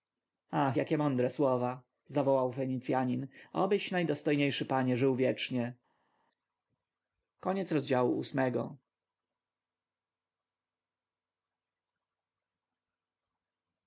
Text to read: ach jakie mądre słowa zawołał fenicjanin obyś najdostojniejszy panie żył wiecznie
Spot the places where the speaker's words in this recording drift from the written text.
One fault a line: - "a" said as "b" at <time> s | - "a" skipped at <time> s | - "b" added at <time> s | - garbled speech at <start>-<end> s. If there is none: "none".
none